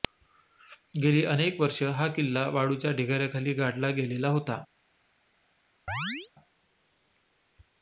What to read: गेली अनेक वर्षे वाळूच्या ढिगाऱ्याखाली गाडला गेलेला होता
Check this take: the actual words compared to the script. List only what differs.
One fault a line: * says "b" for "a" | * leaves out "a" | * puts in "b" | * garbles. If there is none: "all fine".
* puts in "हा किल्ला"